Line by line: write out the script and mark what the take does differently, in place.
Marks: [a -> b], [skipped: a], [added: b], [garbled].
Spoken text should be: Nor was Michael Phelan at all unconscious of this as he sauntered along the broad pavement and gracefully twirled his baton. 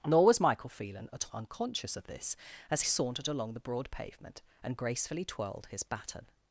Nor was Michael Phelan at [skipped: all] unconscious of this as [skipped: he] sauntered along the broad pavement and gracefully twirled his baton.